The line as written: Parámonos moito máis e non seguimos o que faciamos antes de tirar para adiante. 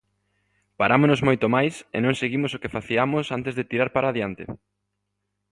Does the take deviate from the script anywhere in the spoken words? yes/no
no